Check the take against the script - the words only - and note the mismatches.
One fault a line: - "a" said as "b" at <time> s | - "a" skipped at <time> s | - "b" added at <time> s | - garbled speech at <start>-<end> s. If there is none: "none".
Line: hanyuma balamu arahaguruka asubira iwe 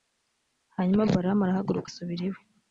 none